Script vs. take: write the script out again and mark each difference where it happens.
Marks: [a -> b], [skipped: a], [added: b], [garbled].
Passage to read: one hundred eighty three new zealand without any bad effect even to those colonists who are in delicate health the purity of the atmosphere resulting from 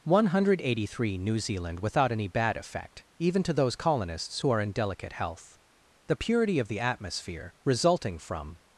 one hundred eighty three new zealand without any bad effect even to those colonists who are in delicate health the purity of the atmosphere resulting from